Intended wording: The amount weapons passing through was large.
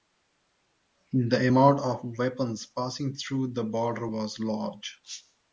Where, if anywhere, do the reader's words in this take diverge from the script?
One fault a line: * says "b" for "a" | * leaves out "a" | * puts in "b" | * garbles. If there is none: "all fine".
* puts in "of"
* puts in "the border"